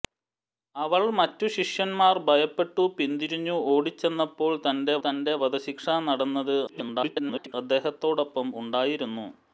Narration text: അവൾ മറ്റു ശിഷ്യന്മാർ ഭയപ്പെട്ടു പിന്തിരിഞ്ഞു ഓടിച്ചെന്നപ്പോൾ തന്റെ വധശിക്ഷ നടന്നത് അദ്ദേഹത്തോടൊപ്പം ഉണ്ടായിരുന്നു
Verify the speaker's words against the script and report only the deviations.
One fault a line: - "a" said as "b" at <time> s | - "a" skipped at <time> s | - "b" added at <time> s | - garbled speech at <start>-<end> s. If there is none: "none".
- "തന്റെ" added at 5.0 s
- garbled speech at 6.7-7.5 s